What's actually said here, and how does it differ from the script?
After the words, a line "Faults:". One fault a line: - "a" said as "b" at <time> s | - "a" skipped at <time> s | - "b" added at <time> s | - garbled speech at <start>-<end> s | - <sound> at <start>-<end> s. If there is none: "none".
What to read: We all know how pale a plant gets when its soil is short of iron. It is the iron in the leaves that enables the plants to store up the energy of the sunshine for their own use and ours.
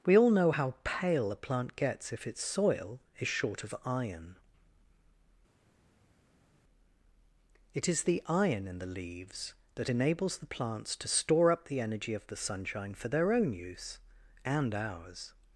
We all know how pale a plant gets if its soil is short of iron. It is the iron in the leaves that enables the plants to store up the energy of the sunshine for their own use and ours.
Faults:
- "when" said as "if" at 2.1 s